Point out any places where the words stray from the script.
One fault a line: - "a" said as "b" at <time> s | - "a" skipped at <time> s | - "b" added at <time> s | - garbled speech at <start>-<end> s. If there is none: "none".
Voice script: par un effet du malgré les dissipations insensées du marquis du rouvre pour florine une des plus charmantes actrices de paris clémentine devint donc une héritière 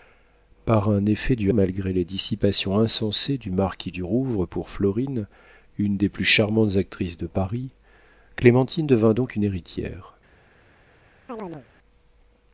none